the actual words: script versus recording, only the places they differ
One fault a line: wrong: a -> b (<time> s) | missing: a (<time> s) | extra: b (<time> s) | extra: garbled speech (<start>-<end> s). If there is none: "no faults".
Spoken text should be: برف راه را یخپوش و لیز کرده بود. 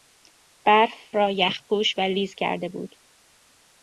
missing: راه (0.9 s)